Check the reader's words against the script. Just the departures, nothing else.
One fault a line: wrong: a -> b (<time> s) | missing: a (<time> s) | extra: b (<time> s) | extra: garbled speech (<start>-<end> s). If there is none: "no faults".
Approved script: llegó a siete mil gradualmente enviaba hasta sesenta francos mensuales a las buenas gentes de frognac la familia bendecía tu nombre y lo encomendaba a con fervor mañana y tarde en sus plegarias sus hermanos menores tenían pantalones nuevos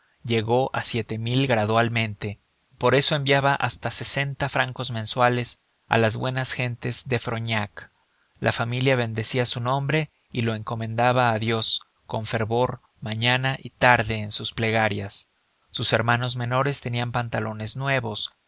extra: por eso (2.8 s)
wrong: tu -> su (9.5 s)
extra: dios (11.4 s)